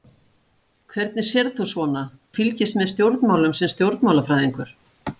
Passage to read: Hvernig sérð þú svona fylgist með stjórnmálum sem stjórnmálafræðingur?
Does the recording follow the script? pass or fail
pass